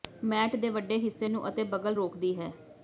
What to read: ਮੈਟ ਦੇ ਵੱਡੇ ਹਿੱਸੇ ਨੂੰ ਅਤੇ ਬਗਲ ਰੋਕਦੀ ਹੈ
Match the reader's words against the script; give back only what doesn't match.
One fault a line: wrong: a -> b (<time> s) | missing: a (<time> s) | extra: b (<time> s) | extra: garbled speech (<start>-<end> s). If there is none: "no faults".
no faults